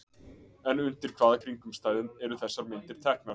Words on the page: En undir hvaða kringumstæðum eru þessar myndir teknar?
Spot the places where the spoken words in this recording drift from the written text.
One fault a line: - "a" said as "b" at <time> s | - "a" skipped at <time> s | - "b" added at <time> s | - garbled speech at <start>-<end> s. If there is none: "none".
none